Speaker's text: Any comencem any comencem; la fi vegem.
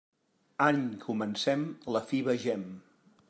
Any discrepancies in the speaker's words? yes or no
yes